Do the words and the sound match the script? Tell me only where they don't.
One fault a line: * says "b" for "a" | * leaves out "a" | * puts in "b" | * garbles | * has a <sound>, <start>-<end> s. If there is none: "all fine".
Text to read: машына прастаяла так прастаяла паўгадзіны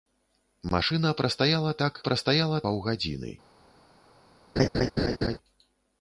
* has a laugh, 4.6-5.4 s